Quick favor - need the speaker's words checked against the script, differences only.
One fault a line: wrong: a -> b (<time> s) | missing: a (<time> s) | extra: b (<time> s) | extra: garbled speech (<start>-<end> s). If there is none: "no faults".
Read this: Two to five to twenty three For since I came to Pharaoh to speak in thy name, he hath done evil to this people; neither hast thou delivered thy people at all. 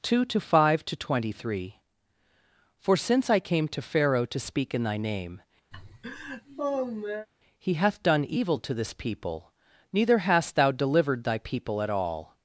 no faults